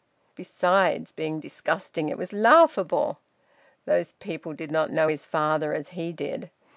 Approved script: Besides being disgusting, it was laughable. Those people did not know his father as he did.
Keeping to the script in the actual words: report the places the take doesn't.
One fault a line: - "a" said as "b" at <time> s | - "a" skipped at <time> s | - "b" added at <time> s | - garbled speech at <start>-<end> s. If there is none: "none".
none